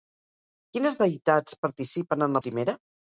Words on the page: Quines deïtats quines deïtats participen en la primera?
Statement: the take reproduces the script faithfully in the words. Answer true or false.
false